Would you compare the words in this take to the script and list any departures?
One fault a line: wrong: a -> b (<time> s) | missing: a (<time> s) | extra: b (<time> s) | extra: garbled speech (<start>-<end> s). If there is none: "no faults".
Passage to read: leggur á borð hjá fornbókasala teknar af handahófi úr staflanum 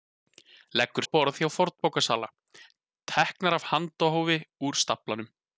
no faults